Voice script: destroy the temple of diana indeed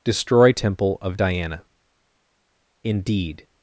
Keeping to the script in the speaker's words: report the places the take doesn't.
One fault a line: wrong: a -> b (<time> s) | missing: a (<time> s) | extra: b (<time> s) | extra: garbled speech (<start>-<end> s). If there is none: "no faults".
missing: the (0.5 s)